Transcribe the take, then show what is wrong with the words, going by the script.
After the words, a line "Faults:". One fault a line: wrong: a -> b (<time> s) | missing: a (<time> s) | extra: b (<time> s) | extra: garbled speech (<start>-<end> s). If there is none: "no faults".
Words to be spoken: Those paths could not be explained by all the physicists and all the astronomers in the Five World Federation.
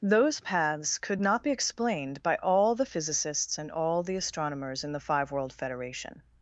Those paths could not be explained by all the physicists and all the astronomers in the Five World Federation.
Faults:
no faults